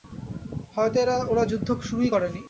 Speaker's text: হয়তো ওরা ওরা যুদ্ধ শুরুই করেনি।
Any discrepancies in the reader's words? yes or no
yes